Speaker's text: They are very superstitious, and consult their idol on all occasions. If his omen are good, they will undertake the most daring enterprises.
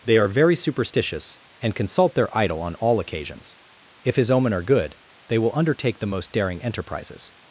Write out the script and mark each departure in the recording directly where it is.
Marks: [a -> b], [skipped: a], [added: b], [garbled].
They are very superstitious, and consult their idol on all occasions. If his omen are good, they will undertake the most daring enterprises.